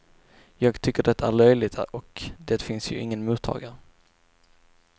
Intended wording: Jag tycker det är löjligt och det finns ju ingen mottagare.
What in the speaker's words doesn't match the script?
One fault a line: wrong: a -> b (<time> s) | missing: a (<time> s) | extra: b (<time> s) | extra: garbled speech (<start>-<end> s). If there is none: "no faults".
no faults